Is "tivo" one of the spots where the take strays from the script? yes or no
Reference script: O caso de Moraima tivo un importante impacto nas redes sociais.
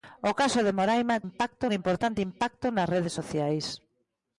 yes